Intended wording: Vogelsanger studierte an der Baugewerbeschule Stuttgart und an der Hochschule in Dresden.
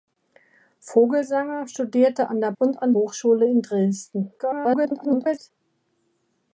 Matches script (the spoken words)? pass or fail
fail